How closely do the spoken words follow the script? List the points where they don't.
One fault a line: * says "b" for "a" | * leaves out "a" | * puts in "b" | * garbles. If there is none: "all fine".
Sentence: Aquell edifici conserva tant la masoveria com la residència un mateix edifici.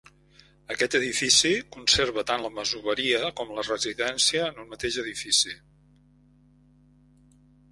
* says "Aquest" for "Aquell"
* puts in "en"